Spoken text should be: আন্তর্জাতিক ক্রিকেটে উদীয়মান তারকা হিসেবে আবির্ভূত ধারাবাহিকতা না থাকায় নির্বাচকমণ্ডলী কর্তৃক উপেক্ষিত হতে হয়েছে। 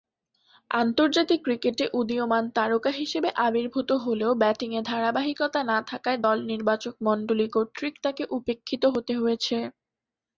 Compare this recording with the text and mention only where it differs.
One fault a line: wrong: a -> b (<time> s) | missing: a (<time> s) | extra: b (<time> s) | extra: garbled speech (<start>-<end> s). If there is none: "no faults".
extra: হলেও ব্যাটিংয়ে (4.0 s)
extra: দল (6.2 s)
extra: তাকে (8.0 s)